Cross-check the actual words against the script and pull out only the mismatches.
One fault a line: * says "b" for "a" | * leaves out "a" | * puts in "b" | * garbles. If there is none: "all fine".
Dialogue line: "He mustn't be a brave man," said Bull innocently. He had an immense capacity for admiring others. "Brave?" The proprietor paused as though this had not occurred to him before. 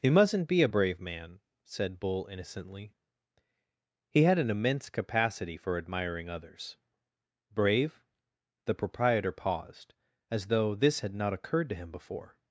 all fine